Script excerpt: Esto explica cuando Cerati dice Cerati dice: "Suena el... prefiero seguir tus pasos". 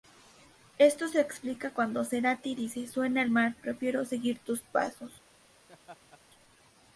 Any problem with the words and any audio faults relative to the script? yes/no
yes